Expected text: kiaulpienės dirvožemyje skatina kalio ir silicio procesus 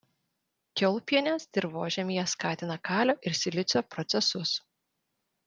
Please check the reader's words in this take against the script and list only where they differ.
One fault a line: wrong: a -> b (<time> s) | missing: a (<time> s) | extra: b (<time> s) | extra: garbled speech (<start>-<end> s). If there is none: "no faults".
no faults